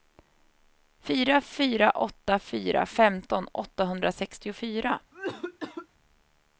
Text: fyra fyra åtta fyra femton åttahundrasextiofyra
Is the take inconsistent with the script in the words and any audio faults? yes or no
yes